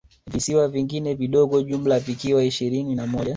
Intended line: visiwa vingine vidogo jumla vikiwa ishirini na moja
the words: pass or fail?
pass